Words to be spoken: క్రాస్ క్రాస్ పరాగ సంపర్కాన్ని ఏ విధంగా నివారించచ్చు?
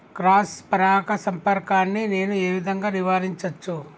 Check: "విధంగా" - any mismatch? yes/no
no